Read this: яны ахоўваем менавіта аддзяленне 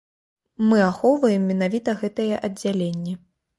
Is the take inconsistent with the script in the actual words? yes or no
yes